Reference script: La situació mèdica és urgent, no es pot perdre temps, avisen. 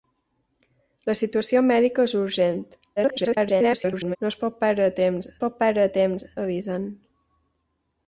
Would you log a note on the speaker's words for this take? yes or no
yes